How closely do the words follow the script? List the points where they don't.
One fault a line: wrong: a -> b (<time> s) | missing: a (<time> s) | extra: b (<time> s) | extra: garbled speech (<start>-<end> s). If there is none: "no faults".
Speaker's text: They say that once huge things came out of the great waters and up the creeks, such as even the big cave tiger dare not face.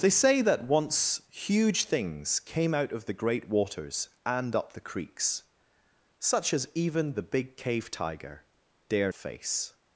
missing: not (9.1 s)